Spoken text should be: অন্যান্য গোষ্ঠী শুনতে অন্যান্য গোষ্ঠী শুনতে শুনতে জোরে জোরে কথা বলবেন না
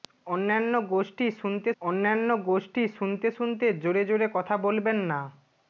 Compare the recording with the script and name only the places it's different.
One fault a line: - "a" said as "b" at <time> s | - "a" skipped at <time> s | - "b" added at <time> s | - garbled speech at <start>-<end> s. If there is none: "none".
none